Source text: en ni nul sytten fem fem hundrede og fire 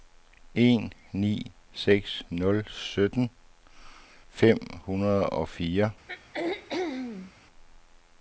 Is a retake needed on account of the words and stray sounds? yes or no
yes